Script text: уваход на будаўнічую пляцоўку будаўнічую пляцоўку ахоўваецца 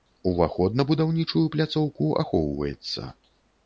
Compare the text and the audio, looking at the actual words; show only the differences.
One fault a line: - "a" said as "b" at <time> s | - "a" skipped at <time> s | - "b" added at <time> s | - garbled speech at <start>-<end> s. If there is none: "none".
- "будаўнічую пляцоўку" skipped at 2.1 s